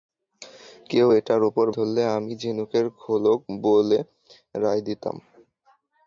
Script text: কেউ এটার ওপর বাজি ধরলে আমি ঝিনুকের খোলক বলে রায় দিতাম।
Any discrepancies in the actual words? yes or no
yes